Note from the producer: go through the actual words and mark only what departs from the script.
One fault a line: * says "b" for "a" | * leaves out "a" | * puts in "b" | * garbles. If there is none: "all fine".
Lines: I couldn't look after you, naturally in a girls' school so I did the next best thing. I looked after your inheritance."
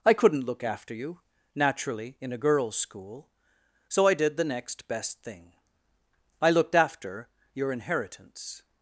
all fine